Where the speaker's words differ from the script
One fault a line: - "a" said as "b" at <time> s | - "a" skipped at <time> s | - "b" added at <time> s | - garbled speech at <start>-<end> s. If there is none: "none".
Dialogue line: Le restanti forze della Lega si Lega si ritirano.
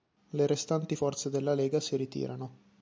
- "Lega si" skipped at 2.0 s